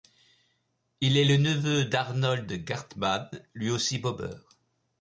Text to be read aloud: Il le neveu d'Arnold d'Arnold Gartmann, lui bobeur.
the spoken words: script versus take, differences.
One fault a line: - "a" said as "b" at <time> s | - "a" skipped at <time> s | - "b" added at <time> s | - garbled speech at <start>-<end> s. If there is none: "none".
- "est" added at 1.1 s
- "d'Arnold" skipped at 2.5 s
- "aussi" added at 3.7 s